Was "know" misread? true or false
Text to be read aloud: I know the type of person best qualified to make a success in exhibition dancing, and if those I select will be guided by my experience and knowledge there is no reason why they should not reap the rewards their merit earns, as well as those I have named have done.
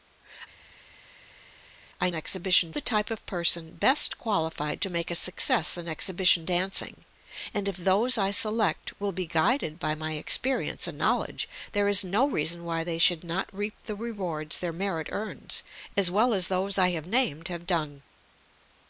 true